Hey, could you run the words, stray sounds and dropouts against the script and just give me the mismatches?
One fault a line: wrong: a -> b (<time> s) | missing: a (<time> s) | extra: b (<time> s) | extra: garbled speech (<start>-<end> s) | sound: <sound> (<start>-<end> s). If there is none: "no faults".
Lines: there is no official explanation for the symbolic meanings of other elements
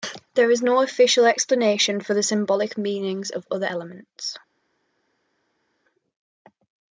no faults